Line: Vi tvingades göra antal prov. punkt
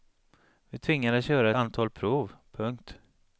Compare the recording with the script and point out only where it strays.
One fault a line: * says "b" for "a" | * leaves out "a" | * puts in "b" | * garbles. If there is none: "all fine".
all fine